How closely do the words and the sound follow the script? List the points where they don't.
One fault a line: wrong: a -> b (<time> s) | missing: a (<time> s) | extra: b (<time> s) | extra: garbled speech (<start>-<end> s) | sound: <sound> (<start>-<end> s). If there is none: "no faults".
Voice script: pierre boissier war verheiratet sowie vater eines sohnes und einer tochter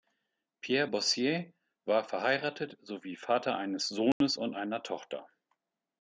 sound: dropout (4.1-4.2 s)